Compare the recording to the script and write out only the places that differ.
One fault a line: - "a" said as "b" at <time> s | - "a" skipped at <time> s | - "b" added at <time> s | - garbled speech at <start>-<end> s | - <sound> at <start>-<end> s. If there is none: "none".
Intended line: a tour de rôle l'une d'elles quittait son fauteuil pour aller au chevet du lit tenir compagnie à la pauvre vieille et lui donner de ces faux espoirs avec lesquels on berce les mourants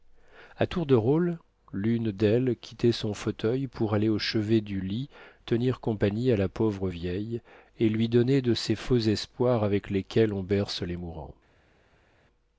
none